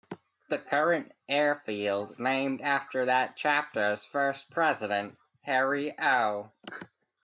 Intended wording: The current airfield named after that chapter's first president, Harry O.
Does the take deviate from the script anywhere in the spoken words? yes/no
no